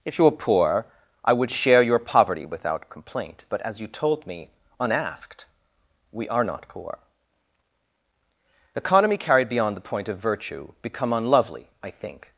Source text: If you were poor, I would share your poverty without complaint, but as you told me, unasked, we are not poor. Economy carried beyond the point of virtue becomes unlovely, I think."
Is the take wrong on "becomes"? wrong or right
wrong